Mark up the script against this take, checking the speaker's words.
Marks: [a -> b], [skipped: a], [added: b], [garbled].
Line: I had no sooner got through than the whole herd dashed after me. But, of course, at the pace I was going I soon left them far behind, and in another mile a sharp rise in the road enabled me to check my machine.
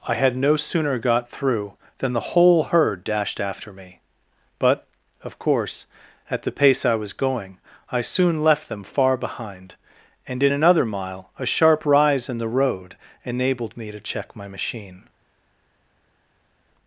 I had no sooner got through than the whole herd dashed after me. But, of course, at the pace I was going I soon left them far behind, and in another mile a sharp rise in the road enabled me to check my machine.